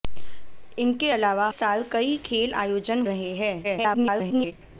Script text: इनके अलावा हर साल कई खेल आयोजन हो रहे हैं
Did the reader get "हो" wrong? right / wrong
wrong